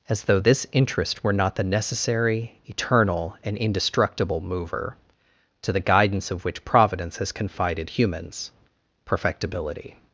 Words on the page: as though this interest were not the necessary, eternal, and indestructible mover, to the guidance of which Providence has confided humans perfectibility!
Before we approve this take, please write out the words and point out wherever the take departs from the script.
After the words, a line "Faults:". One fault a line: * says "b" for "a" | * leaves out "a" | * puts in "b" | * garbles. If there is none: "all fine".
as though this interest were not the necessary, eternal, and indestructible mover, to the guidance of which Providence has confided humans perfectibility!
Faults:
all fine